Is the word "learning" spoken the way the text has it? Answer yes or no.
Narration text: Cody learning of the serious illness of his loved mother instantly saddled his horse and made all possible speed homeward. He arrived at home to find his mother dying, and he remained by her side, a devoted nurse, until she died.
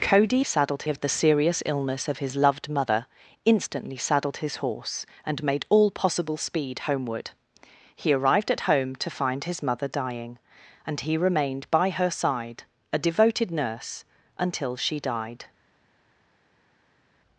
no